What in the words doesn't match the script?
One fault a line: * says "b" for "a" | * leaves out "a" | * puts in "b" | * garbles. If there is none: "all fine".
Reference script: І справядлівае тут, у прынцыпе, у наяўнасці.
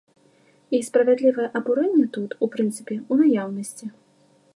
* puts in "абурэнне"